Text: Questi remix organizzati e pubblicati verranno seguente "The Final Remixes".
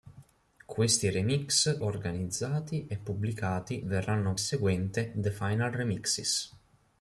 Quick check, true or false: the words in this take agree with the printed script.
true